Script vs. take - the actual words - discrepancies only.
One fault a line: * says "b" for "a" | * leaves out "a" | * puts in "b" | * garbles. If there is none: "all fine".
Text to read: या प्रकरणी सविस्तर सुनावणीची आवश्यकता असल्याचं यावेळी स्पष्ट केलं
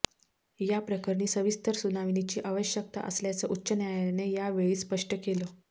* puts in "उच्च न्यायालयाने"